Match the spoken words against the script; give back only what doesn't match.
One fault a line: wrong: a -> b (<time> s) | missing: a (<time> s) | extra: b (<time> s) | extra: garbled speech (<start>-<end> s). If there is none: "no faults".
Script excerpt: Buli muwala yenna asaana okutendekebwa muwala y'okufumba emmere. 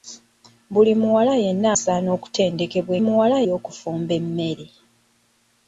no faults